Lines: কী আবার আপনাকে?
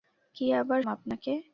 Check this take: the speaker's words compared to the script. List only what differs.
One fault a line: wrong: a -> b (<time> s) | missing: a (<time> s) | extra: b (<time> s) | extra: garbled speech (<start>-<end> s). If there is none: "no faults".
no faults